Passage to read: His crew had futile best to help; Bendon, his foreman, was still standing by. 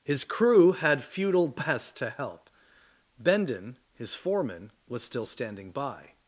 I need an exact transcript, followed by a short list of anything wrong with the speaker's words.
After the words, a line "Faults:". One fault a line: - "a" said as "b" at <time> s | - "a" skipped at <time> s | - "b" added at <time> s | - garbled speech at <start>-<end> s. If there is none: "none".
His crew had futile best to help; Bendon, his foreman, was still standing by.
Faults:
none